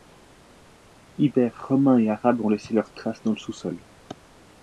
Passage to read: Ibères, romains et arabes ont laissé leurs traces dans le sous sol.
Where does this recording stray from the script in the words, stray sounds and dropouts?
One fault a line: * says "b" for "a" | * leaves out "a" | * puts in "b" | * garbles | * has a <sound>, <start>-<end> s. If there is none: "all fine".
all fine